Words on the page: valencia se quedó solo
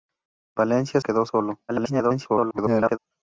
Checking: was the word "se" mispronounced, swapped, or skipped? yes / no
yes